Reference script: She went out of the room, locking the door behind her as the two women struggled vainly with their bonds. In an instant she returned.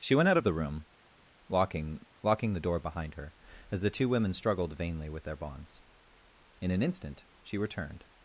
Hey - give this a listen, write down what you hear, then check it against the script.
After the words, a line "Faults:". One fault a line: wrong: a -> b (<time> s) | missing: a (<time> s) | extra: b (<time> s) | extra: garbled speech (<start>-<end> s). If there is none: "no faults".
She went out of the room, locking locking the door behind her as the two women struggled vainly with their bonds. In an instant she returned.
Faults:
extra: locking (2.2 s)